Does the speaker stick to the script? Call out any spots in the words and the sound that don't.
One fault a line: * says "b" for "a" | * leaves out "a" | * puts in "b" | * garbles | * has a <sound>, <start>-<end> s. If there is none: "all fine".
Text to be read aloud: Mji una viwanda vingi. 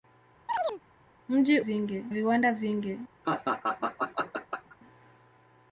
* has a chirp, 0.5-0.8 s
* says "vingi" for "una"
* has a laugh, 3.2-4.8 s